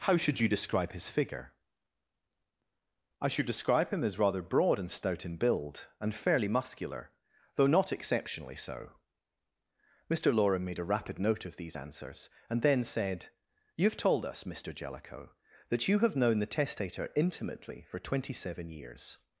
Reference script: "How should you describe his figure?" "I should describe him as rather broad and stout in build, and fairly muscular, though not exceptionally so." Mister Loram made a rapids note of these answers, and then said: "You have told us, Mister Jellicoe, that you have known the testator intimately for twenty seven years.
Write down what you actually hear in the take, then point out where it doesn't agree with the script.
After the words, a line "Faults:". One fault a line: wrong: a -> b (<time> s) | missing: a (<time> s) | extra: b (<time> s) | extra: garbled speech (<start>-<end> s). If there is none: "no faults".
"How should you describe his figure?" "I should describe him as rather broad and stout in build, and fairly muscular, though not exceptionally so." Mister Loram made a rapid note of these answers, and then said: "You have told us, Mister Jellicoe, that you have known the testator intimately for twenty seven years.
Faults:
wrong: rapids -> rapid (10.9 s)